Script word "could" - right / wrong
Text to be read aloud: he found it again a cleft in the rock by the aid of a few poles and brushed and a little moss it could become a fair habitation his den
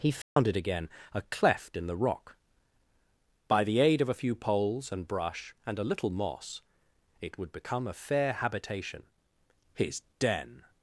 wrong